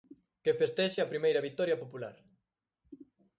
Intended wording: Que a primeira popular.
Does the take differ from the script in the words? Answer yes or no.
yes